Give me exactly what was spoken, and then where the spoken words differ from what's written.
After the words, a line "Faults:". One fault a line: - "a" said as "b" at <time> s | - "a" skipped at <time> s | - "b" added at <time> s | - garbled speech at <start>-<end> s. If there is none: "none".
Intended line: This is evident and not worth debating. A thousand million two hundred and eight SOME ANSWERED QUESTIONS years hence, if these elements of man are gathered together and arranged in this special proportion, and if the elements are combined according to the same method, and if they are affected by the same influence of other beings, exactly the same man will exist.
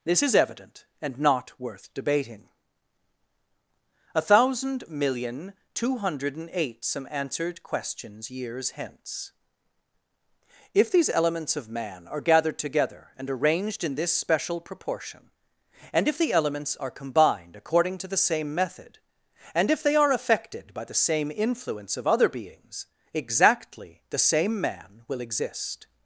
This is evident and not worth debating. A thousand million two hundred and eight SOME ANSWERED QUESTIONS years hence, if these elements of man are gathered together and arranged in this special proportion, and if the elements are combined according to the same method, and if they are affected by the same influence of other beings, exactly the same man will exist.
Faults:
none